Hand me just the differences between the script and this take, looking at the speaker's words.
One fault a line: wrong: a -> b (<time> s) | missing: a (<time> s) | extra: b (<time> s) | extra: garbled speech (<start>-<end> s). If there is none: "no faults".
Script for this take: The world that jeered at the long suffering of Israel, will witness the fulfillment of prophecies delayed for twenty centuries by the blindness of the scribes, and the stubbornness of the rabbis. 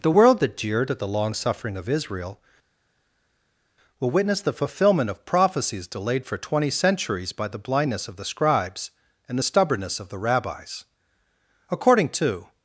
extra: According to (11.7 s)